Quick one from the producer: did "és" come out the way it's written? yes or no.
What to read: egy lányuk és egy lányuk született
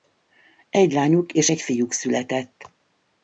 yes